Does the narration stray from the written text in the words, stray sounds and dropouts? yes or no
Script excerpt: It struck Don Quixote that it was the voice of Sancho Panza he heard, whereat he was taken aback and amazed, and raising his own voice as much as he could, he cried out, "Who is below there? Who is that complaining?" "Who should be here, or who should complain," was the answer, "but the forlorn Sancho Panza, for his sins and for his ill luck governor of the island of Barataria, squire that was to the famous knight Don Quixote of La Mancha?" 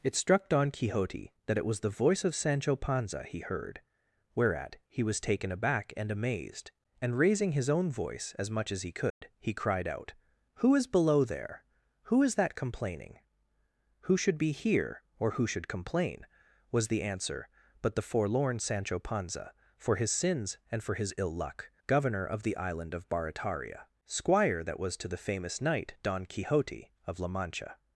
yes